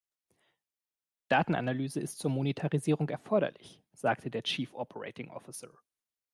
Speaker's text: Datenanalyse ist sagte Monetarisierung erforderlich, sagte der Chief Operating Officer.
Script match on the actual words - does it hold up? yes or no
no